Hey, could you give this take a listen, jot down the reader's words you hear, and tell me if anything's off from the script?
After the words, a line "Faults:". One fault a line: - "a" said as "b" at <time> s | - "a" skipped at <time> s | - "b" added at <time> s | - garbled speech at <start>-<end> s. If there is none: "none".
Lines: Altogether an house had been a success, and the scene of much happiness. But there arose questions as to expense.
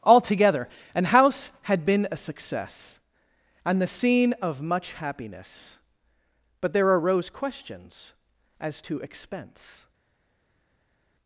Altogether an house had been a success, and the scene of much happiness. But there arose questions as to expense.
Faults:
none